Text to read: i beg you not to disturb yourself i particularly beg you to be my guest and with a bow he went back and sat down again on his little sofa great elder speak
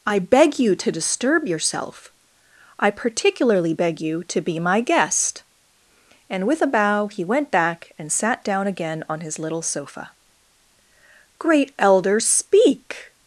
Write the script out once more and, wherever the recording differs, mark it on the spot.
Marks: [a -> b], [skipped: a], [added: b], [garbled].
i beg you [skipped: not] to disturb yourself i particularly beg you to be my guest and with a bow he went back and sat down again on his little sofa great elder speak